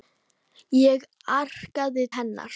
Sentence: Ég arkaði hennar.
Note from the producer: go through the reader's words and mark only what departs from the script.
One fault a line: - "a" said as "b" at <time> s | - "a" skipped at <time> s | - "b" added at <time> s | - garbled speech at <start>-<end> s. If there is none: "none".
none